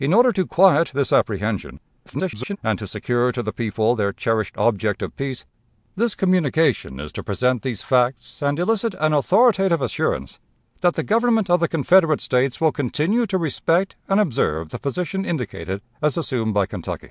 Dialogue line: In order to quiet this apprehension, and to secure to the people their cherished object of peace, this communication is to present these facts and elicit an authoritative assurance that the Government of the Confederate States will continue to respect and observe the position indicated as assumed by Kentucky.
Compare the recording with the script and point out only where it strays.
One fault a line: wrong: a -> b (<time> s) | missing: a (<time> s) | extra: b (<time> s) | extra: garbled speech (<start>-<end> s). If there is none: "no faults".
extra: garbled speech (2.1-2.6 s)